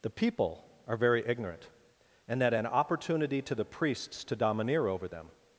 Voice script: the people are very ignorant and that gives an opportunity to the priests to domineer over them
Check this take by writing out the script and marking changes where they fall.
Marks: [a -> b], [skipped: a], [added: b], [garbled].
the people are very ignorant and that [skipped: gives] an opportunity to the priests to domineer over them